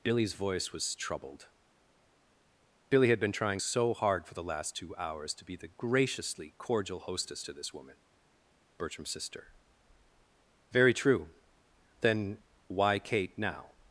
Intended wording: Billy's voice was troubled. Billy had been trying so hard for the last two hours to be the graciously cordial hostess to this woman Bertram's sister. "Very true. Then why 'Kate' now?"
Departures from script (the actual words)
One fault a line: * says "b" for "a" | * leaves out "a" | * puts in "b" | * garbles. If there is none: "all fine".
all fine